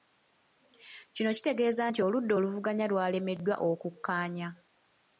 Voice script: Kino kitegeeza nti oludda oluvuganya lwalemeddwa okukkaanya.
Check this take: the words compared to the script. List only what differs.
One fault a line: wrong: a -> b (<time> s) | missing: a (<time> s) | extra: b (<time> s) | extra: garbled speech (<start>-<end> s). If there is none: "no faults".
no faults